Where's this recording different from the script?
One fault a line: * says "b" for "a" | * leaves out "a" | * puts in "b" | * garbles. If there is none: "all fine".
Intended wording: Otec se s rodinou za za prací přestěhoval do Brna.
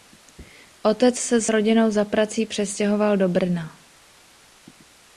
* leaves out "za"